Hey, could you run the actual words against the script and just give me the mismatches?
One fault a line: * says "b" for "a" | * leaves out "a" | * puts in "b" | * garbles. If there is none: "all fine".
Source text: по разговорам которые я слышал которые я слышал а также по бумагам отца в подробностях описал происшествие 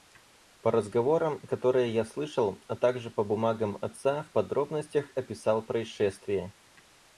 * leaves out "которые я слышал"